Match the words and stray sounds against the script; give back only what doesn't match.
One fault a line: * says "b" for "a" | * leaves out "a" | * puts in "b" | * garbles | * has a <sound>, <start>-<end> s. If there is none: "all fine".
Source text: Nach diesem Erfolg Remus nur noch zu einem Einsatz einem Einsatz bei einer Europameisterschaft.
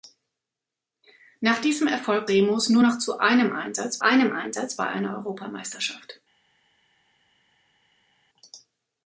all fine